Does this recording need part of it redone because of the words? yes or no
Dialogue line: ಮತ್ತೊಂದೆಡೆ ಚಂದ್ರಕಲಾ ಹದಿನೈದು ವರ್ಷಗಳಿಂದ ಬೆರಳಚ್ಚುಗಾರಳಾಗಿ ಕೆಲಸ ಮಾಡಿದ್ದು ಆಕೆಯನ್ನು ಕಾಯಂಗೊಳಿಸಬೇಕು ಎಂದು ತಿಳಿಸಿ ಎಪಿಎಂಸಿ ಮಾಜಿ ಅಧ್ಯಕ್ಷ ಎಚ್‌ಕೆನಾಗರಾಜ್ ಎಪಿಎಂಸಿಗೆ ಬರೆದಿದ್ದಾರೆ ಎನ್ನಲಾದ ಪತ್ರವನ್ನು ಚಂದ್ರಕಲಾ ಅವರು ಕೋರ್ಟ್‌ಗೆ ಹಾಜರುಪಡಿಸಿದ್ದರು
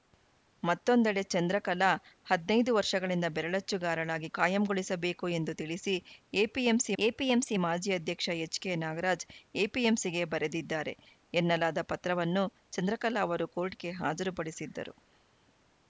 yes